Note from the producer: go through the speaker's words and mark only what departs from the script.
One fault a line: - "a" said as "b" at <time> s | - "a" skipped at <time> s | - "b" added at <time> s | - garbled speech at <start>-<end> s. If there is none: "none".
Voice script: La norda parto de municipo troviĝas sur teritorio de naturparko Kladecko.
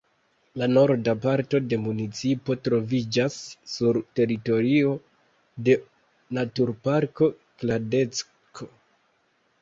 none